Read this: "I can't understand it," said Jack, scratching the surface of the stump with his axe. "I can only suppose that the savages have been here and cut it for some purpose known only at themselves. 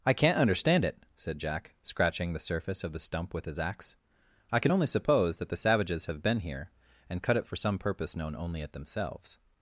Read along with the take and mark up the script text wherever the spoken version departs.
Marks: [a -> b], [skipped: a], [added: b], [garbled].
"I can't understand it," said Jack, scratching the surface of the stump with his axe. "I can only suppose that the savages have been here and cut it for some purpose known only at themselves.